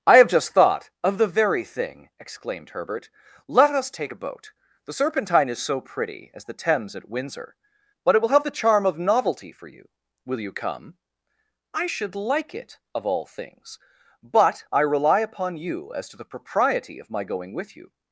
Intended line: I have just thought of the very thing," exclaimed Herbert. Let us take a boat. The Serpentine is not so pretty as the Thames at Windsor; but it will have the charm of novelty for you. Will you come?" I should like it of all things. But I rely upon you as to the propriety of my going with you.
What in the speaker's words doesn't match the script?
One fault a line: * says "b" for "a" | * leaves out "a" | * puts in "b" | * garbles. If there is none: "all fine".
* leaves out "not"